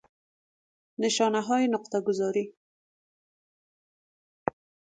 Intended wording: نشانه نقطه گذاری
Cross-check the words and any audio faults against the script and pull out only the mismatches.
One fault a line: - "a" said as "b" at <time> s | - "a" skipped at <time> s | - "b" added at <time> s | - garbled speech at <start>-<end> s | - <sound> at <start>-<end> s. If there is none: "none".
- "های" added at 1.4 s